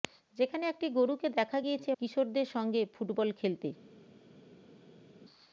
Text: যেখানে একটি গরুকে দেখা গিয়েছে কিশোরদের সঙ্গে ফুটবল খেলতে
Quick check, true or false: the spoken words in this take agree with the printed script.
true